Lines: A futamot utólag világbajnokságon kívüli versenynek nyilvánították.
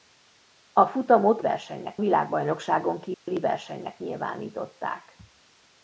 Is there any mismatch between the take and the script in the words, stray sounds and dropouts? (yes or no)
yes